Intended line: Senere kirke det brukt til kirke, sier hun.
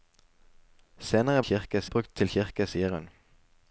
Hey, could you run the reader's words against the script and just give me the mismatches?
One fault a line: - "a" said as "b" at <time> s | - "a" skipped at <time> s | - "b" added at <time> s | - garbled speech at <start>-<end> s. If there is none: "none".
none